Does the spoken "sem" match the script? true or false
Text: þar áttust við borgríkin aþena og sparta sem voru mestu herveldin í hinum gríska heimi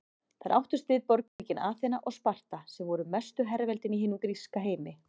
true